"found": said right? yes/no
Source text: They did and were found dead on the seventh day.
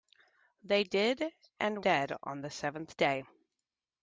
no